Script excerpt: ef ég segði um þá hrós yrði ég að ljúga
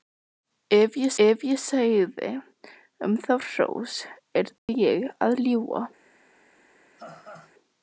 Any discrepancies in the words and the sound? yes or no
yes